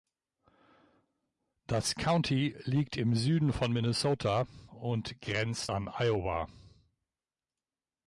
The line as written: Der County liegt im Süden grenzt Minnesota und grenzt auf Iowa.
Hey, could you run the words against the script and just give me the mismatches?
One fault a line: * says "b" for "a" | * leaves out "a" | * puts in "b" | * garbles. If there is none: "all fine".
* says "Das" for "Der"
* says "von" for "grenzt"
* says "an" for "auf"